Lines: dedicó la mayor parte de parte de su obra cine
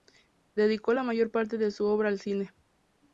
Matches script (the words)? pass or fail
fail